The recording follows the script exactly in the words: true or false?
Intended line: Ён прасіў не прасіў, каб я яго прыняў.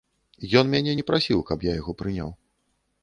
false